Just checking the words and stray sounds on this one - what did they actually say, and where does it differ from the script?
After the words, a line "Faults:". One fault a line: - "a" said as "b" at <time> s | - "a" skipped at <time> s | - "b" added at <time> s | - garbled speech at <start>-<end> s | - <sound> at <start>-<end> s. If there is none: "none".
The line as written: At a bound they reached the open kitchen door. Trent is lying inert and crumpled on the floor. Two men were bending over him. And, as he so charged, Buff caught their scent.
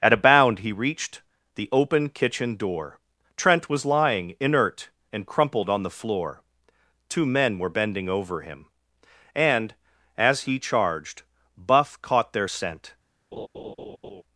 At a bound he reached the open kitchen door. Trent was lying inert and crumpled on the floor. Two men were bending over him. And, as he charged, Buff caught their scent.
Faults:
- "they" said as "he" at 0.6 s
- "is" said as "was" at 3.7 s
- "so" skipped at 10.6 s
- laugh at 13.3-14.2 s